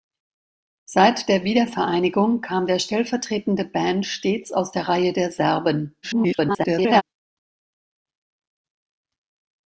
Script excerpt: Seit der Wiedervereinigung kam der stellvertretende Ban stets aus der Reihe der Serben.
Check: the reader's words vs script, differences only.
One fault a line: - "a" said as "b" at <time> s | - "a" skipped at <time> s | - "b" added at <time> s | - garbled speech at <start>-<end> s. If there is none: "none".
- garbled speech at 6.0-7.0 s